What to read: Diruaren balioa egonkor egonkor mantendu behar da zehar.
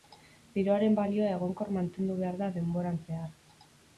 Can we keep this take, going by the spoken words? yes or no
no